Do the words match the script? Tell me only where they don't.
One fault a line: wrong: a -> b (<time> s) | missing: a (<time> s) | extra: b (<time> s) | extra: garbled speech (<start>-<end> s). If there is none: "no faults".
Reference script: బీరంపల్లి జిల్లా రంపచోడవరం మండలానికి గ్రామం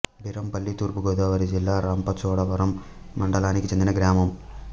extra: తూర్పు గోదావరి (0.7 s)
extra: చెందిన (3.7 s)